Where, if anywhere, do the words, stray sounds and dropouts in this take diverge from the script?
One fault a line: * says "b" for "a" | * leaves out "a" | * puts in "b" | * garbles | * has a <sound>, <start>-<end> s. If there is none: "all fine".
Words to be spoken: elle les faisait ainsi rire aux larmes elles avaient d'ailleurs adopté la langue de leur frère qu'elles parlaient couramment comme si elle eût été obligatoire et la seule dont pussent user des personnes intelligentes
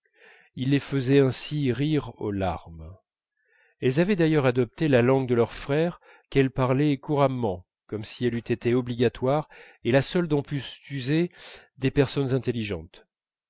* says "il" for "elle"